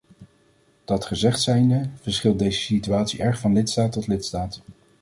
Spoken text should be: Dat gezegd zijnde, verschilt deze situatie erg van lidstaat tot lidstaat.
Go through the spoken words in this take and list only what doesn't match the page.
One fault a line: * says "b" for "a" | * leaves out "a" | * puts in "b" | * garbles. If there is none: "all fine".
all fine